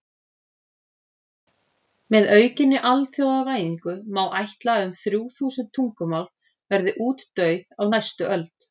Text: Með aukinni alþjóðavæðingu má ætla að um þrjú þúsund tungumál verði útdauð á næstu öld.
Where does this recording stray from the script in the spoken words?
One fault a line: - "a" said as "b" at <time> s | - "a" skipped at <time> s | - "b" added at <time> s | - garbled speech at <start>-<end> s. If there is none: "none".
none